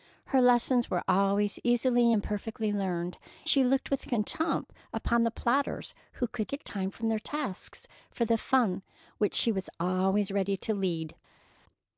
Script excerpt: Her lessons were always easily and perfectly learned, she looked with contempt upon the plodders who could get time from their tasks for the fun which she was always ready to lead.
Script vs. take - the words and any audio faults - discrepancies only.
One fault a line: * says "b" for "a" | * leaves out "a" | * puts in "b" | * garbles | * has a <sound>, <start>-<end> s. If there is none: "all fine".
all fine